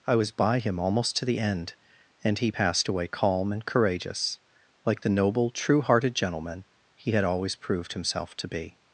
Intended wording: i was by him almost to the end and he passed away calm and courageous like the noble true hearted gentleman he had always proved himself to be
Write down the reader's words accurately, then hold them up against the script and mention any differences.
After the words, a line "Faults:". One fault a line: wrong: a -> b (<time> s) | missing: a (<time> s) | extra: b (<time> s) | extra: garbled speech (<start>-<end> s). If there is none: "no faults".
i was by him almost to the end and he passed away calm and courageous like the noble true hearted gentleman he had always proved himself to be
Faults:
no faults